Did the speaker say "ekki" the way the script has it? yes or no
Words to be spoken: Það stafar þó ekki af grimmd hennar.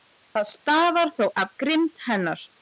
no